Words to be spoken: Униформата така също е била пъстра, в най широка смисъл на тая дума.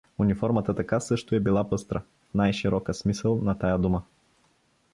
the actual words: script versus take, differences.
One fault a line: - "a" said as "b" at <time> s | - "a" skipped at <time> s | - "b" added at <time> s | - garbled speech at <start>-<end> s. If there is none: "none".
none